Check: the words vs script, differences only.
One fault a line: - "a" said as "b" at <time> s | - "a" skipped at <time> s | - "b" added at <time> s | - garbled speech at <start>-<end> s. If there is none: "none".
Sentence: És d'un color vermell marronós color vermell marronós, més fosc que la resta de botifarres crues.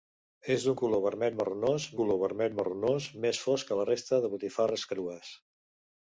none